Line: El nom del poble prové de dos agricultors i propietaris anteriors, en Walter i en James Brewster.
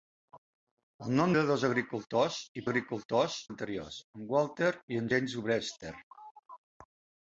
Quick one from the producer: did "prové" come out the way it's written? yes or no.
no